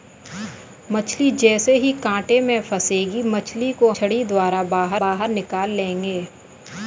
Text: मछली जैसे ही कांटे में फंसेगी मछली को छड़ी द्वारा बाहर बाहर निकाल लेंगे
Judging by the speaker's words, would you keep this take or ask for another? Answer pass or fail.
pass